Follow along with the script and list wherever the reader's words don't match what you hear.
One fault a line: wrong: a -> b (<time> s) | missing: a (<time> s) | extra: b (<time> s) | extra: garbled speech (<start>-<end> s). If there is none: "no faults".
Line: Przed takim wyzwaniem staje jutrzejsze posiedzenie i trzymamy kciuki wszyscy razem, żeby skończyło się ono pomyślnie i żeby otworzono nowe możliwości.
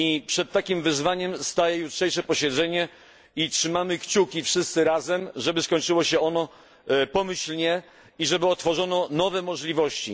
no faults